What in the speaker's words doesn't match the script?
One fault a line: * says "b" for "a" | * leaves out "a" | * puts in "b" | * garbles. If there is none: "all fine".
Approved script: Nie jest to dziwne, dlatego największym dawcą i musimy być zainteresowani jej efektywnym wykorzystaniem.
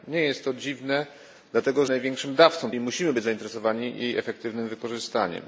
all fine